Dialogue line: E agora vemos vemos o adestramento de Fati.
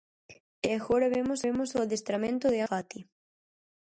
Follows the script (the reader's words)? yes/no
yes